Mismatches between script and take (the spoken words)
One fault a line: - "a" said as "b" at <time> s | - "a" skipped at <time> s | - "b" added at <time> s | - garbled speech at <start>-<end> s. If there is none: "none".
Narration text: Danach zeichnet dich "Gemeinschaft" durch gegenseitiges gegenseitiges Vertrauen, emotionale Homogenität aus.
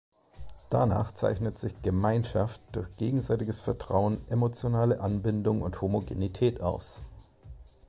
- "dich" said as "sich" at 1.6 s
- "gegenseitiges" skipped at 3.6 s
- "Anbindung und" added at 5.0 s